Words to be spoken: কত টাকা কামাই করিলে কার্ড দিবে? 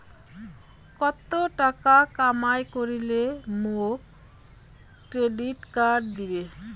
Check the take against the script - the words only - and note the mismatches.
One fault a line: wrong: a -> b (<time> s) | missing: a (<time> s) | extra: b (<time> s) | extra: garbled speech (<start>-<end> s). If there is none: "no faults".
extra: মোক ক্রেডিট (3.6 s)